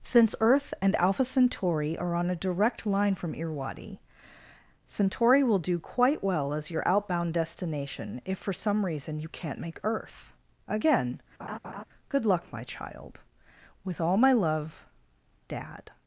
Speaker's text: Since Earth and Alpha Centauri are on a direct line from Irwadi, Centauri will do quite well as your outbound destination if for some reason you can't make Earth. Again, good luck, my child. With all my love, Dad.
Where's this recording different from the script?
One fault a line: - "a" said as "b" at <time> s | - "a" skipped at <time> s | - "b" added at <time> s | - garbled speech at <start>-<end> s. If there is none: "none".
none